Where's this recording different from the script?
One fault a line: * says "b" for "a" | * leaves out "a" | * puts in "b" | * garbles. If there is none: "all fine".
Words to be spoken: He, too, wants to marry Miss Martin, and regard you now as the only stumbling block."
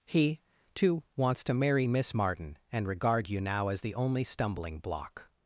all fine